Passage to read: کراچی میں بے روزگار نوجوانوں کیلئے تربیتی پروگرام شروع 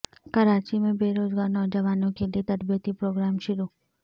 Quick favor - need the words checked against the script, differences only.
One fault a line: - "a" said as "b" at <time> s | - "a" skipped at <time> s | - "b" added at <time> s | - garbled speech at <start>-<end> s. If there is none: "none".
none